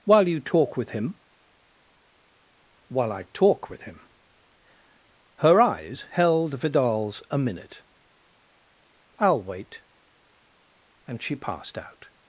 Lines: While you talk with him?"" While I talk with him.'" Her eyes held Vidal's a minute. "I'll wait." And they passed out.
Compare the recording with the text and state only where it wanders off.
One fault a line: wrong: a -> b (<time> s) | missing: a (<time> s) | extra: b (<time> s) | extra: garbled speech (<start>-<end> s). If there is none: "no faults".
wrong: they -> she (11.2 s)